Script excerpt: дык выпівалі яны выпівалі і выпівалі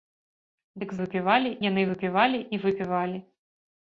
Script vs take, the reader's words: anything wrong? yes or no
no